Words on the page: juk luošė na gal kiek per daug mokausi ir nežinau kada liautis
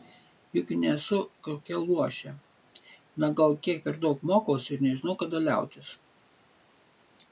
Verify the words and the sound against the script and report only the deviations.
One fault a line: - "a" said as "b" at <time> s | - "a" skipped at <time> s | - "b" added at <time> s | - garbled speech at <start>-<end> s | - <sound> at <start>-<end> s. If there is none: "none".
- "nesu kokia" added at 0.8 s